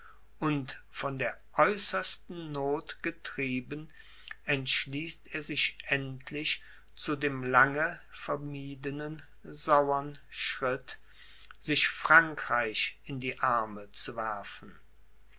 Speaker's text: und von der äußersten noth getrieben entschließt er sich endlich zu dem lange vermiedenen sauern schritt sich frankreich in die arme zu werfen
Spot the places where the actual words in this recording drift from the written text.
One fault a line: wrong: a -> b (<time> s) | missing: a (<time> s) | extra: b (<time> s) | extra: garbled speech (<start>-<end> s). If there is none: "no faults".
no faults